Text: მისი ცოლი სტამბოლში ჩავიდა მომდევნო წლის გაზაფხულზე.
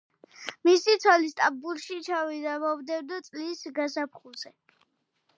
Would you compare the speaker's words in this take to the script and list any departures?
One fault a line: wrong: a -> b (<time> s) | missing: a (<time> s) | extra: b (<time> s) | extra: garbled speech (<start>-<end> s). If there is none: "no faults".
no faults